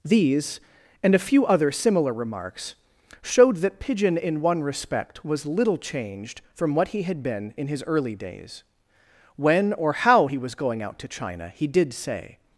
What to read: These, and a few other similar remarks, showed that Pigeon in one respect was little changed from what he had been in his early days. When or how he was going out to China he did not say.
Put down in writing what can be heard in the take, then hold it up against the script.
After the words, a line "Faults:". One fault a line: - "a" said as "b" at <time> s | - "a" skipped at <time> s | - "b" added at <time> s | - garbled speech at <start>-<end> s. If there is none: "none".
These, and a few other similar remarks, showed that Pigeon in one respect was little changed from what he had been in his early days. When or how he was going out to China he did say.
Faults:
- "not" skipped at 11.9 s